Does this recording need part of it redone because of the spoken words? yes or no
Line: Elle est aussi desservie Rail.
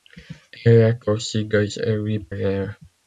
no